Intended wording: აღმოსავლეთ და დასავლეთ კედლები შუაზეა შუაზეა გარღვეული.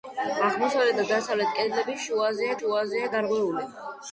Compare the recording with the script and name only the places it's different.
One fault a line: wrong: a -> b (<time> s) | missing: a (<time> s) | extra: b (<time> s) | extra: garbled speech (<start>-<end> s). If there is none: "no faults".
no faults